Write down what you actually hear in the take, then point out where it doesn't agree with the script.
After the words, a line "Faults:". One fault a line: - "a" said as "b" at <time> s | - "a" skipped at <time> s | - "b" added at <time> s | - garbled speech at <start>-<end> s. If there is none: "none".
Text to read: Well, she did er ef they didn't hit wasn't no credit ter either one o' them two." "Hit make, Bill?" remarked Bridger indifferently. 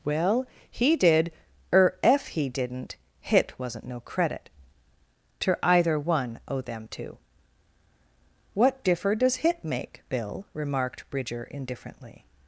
Well, he did er ef he didn't hit wasn't no credit ter either one o' them two." "What differ does hit make, Bill?" remarked Bridger indifferently.
Faults:
- "she" said as "he" at 0.7 s
- "they" said as "he" at 2.3 s
- "What differ does" added at 8.5 s